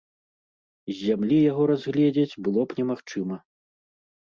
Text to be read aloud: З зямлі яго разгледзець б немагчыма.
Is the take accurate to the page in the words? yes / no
no